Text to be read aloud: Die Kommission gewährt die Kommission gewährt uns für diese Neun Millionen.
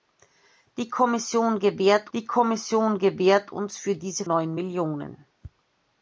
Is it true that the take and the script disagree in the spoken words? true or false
false